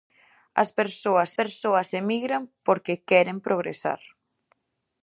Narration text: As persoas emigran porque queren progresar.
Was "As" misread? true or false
false